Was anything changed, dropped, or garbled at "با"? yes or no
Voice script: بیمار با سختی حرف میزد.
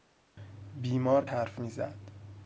yes